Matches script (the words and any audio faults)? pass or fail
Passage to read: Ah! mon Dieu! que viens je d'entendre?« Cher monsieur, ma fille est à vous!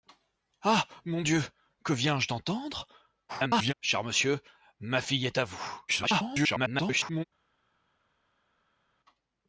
fail